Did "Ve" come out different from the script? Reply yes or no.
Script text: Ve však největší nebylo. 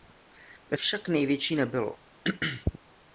no